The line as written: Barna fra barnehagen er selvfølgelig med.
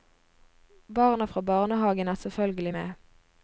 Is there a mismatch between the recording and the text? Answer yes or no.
no